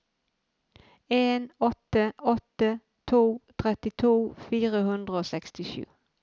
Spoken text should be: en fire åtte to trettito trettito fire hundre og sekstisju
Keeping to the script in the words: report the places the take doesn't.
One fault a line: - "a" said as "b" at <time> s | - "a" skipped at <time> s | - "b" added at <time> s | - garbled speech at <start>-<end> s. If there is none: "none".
- "fire" said as "åtte" at 1.6 s
- "trettito" skipped at 4.2 s